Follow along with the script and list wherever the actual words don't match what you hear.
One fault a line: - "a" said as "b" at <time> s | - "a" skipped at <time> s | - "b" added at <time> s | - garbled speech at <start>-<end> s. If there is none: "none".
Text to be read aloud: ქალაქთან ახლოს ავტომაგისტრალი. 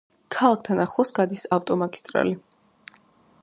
- "გადის" added at 1.2 s